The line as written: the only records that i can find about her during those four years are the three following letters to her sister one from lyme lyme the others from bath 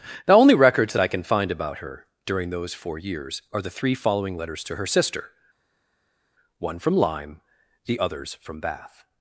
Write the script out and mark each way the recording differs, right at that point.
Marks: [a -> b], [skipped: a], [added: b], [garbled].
the only records that i can find about her during those four years are the three following letters to her sister one from lyme [skipped: lyme] the others from bath